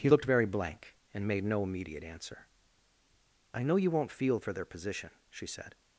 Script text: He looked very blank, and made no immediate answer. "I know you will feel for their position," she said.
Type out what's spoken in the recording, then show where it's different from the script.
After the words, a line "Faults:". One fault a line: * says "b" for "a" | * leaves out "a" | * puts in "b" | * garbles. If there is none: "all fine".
He looked very blank, and made no immediate answer. "I know you won't feel for their position," she said.
Faults:
* says "won't" for "will"